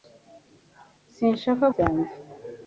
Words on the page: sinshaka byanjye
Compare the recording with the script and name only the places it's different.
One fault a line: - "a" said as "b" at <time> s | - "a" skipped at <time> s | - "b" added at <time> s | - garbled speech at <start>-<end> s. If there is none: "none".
none